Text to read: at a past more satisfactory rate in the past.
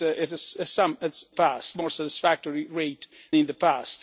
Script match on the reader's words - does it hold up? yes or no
yes